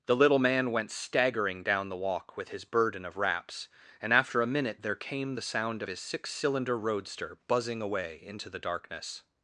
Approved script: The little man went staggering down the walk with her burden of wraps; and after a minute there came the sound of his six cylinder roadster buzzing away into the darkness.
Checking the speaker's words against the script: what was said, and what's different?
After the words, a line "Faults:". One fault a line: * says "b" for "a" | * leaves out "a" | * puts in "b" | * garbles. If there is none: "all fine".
The little man went staggering down the walk with his burden of wraps; and after a minute there came the sound of his six cylinder roadster buzzing away into the darkness.
Faults:
* says "his" for "her"